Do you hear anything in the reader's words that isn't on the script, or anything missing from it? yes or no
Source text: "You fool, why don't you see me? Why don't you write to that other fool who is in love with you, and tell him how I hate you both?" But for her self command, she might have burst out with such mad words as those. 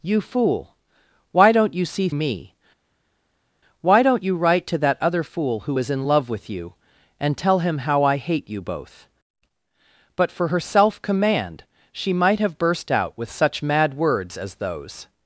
no